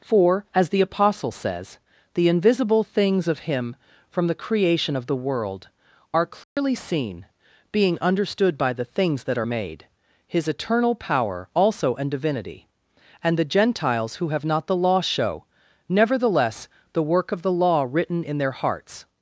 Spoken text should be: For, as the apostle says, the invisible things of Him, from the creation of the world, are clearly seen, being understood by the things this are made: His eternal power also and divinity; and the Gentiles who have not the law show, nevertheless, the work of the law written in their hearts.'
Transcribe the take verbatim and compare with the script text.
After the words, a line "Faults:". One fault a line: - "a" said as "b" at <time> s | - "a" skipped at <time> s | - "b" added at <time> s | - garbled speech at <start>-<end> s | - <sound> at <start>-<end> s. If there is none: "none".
For, as the apostle says, the invisible things of Him, from the creation of the world, are clearly seen, being understood by the things that are made: His eternal power also and divinity; and the Gentiles who have not the law show, nevertheless, the work of the law written in their hearts.'
Faults:
- dropout at 6.4-6.6 s
- "this" said as "that" at 9.2 s